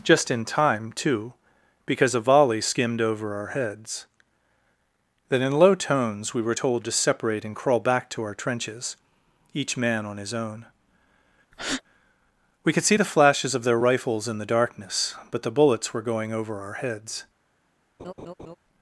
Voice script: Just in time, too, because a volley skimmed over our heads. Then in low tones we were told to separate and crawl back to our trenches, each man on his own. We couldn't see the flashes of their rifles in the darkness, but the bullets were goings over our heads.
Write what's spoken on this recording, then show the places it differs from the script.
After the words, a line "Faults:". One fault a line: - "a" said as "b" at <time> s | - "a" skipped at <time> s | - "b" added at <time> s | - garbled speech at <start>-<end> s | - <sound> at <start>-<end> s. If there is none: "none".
Just in time, too, because a volley skimmed over our heads. Then in low tones we were told to separate and crawl back to our trenches, each man on his own. We could see the flashes of their rifles in the darkness, but the bullets were going over our heads.
Faults:
- breath at 11.5-11.8 s
- "couldn't" said as "could" at 12.7 s
- "goings" said as "going" at 16.0 s
- laugh at 18.0-18.6 s